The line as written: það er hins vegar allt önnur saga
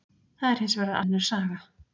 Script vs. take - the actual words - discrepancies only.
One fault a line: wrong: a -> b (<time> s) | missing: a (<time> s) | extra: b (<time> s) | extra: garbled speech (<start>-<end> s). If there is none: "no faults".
missing: allt (1.0 s)